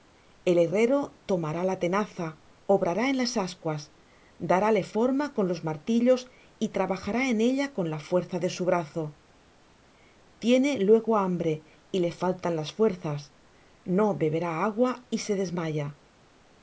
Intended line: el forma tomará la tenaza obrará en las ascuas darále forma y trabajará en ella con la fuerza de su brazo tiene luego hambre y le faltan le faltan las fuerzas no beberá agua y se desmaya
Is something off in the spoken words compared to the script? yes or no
yes